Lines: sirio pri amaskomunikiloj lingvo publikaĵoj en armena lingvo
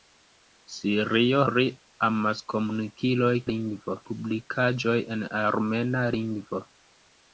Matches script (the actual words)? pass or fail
pass